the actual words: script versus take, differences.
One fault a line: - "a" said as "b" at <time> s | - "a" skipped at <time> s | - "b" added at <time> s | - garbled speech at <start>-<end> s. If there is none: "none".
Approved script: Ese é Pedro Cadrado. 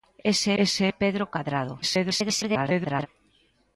- "ese" added at 0.6 s
- garbled speech at 1.8-3.1 s